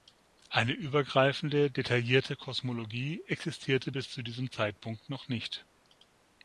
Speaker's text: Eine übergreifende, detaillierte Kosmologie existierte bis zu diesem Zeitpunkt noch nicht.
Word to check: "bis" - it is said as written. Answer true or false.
true